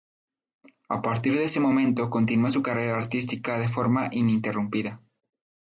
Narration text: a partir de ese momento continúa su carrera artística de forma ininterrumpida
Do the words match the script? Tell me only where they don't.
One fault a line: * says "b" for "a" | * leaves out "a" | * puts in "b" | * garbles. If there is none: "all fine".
all fine